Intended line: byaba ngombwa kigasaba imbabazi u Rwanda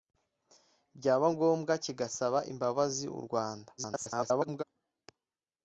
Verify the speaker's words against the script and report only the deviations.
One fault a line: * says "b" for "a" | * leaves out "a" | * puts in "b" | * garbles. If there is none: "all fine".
* garbles